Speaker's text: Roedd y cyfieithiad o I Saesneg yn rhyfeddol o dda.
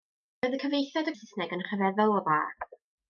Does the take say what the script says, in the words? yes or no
yes